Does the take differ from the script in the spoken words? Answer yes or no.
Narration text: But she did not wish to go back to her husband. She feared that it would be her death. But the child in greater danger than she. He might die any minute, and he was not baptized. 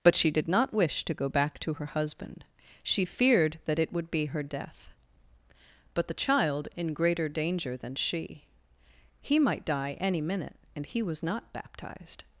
no